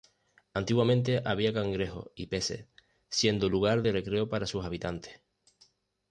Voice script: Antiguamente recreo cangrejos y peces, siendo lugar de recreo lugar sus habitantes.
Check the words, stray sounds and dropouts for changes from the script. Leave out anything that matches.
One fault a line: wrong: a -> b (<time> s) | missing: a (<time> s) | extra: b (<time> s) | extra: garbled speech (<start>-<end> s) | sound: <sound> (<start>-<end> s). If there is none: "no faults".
wrong: recreo -> había (1.2 s)
wrong: lugar -> para (4.3 s)